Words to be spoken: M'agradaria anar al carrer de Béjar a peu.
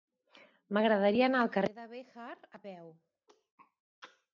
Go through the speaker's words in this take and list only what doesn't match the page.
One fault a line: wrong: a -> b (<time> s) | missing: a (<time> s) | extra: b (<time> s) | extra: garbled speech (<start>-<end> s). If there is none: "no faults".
no faults